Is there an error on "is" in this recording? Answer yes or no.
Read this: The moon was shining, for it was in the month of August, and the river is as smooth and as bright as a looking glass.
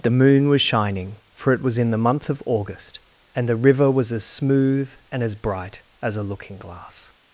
yes